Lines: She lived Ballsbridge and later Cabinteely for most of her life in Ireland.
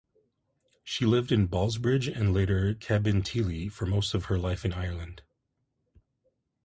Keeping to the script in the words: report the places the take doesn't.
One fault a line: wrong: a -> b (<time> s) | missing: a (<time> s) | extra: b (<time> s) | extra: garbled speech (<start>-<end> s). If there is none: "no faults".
extra: in (1.3 s)